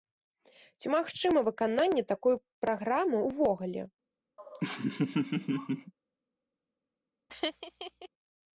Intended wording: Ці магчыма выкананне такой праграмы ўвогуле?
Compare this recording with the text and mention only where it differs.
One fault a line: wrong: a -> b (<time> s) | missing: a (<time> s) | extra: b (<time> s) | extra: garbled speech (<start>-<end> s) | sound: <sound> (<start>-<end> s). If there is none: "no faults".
sound: laugh (4.4-5.9 s)
sound: laugh (7.3-8.1 s)